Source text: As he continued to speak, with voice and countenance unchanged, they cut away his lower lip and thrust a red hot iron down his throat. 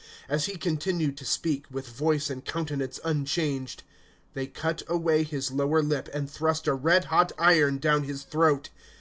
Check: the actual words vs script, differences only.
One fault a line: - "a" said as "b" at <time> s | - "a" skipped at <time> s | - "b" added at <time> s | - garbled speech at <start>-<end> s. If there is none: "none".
none